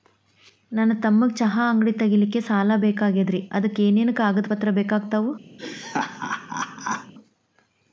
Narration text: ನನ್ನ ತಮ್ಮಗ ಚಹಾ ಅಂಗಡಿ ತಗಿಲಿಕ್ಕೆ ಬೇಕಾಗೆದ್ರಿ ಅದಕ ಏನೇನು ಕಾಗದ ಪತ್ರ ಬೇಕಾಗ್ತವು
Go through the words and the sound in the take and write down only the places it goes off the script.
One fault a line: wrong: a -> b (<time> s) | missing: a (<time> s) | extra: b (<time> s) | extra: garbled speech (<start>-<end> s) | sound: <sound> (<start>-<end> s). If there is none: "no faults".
extra: ಸಾಲ (2.4 s)
sound: laugh (5.6-7.1 s)